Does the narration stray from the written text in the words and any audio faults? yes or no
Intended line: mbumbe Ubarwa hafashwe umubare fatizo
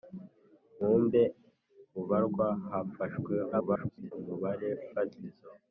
yes